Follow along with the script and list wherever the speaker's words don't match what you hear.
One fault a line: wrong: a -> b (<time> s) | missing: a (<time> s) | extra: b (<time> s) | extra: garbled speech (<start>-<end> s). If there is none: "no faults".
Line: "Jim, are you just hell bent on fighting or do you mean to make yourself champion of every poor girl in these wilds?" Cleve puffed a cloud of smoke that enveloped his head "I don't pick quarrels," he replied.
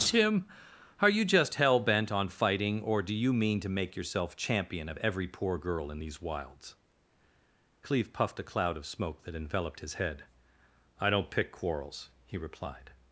no faults